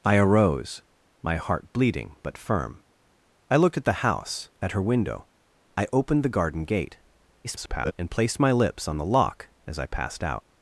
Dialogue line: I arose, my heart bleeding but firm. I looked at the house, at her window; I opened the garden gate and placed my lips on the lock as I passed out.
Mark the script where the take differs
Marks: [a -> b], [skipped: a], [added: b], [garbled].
I arose, my heart bleeding but firm. I looked at the house, at her window; I opened the garden gate [garbled] and placed my lips on the lock as I passed out.